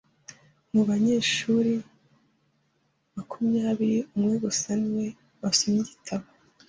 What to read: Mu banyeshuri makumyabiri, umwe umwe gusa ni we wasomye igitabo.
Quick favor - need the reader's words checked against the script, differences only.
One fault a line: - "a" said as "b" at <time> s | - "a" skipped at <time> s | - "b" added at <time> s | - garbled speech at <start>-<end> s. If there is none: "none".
- "umwe" skipped at 4.3 s